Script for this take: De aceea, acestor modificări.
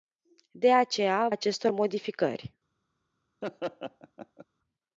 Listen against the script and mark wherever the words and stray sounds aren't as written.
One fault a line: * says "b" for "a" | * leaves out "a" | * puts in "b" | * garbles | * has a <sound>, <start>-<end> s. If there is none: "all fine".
* has a laugh, 3.4-4.5 s